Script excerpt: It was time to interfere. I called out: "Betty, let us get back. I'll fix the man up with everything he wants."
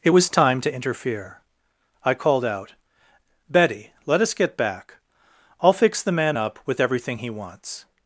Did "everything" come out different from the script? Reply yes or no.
no